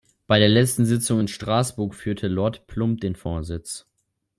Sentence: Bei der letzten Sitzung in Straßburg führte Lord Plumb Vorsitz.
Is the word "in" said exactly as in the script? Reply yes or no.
yes